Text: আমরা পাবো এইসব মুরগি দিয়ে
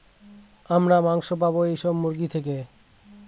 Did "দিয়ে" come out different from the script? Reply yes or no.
yes